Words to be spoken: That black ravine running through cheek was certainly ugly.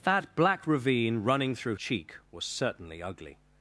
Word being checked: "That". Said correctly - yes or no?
yes